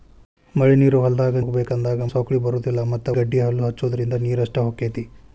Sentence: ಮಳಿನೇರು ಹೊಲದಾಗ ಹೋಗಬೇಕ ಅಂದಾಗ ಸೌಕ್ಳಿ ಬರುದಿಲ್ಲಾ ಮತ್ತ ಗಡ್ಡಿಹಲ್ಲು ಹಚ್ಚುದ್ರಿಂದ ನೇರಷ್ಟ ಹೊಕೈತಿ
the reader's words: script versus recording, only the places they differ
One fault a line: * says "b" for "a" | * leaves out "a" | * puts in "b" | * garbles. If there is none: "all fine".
all fine